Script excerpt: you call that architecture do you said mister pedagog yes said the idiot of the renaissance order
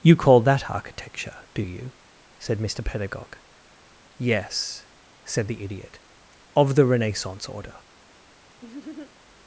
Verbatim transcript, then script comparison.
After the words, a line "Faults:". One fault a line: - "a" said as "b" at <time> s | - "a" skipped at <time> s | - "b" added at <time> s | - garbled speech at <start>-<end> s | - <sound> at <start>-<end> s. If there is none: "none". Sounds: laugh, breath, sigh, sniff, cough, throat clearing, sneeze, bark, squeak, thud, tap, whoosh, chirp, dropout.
you call that architecture do you said mister pedagog yes said the idiot of the renaissance order
Faults:
- laugh at 8.6-9.1 s